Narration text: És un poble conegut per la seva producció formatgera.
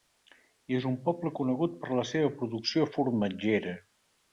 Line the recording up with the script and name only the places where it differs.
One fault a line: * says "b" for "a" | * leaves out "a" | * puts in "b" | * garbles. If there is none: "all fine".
all fine